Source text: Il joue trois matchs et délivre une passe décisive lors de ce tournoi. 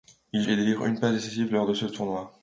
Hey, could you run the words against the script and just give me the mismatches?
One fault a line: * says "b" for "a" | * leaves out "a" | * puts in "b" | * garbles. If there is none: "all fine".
* leaves out "joue trois matchs"